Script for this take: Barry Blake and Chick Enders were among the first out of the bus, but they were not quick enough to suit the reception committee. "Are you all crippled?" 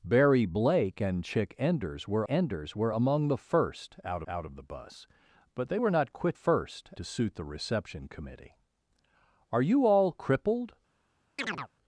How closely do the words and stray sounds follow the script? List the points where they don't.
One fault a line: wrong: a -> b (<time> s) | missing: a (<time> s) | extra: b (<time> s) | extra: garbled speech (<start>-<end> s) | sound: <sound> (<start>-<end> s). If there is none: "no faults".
extra: Enders were (2.3 s)
extra: out (4.3 s)
wrong: enough -> first (6.3 s)
sound: chirp (11.4-11.7 s)